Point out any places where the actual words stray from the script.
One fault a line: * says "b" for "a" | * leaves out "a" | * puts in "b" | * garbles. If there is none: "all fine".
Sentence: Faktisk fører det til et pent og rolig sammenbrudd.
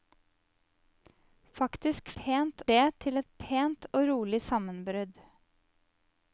* says "pent" for "fører"